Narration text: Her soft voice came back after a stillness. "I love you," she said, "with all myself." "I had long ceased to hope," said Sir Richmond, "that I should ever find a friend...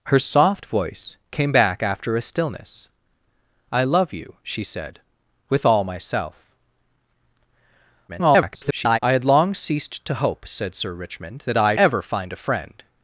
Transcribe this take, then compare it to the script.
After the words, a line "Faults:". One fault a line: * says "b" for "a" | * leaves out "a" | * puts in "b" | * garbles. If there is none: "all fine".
Her soft voice came back after a stillness. "I love you," she said, "with all myself." [garbled] "I had long ceased to hope," said Sir Richmond, "that I ever find a friend...
Faults:
* garbles
* leaves out "should"